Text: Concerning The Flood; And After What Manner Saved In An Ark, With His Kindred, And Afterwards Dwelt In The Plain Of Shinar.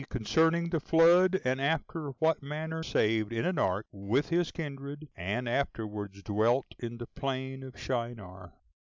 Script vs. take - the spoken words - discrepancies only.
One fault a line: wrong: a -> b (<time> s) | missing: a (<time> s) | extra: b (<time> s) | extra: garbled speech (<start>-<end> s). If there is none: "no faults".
no faults